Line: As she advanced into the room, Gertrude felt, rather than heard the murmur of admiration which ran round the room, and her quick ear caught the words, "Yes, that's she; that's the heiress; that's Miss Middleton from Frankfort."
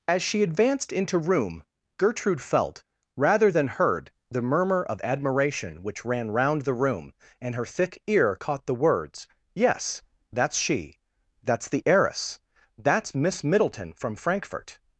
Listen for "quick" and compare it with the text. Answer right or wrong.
wrong